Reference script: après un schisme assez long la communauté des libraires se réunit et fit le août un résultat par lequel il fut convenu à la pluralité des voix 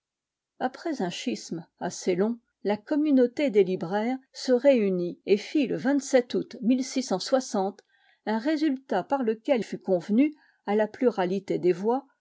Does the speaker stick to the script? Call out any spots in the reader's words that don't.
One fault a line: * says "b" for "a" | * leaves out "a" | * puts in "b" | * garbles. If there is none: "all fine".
* leaves out "il"